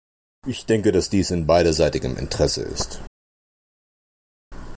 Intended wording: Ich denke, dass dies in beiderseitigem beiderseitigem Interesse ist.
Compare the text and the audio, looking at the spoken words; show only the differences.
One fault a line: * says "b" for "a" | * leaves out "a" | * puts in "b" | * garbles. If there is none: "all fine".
* leaves out "beiderseitigem"